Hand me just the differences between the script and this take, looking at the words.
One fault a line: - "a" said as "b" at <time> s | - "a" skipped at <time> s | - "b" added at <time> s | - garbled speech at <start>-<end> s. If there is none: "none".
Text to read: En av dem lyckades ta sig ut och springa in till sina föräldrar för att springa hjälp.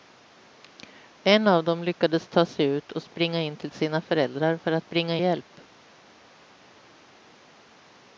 none